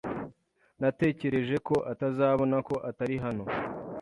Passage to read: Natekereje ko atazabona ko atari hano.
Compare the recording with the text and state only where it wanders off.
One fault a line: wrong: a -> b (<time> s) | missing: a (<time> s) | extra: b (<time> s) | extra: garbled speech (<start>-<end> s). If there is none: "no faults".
no faults